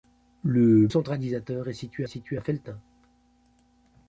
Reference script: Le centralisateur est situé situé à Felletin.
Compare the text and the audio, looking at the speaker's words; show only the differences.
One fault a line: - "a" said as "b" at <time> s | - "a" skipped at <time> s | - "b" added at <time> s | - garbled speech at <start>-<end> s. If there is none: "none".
none